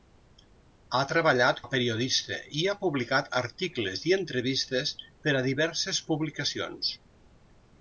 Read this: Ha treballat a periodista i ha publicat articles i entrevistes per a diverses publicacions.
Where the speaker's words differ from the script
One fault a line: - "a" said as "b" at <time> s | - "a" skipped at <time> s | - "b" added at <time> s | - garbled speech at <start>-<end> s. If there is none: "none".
none